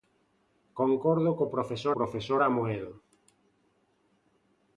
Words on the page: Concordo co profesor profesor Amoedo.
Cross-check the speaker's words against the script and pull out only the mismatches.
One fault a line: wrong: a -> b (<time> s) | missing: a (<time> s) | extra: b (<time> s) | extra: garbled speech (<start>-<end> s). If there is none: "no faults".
no faults